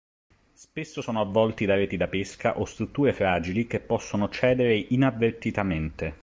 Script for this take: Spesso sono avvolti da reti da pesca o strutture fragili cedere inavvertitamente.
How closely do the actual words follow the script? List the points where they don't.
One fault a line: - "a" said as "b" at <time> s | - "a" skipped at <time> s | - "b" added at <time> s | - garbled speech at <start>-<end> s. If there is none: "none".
- "che possono" added at 3.7 s